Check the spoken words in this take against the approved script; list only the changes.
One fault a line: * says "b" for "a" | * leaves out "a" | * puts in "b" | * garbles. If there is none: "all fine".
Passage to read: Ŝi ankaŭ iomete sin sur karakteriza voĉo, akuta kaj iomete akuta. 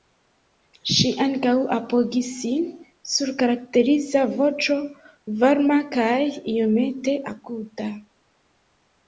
* says "apogis" for "iomete"
* says "varma" for "akuta"